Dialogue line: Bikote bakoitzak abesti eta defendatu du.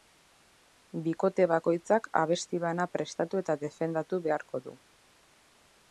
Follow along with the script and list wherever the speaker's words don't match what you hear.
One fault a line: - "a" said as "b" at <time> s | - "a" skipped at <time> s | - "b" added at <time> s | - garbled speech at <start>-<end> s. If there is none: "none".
- "bana prestatu" added at 2.6 s
- "beharko" added at 4.3 s